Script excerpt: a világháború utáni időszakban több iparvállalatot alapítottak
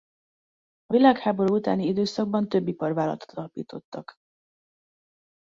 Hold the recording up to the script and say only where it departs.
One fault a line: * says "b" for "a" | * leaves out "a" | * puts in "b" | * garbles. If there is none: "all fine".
all fine